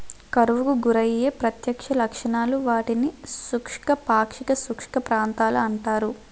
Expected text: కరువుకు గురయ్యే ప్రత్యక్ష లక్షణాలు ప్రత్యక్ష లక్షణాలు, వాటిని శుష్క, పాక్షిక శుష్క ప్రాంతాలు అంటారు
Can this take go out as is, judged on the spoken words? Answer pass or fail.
fail